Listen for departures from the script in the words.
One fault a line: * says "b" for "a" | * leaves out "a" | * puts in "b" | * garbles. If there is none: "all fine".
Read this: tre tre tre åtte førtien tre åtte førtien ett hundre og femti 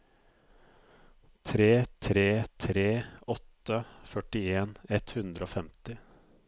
* leaves out "tre åtte førtien"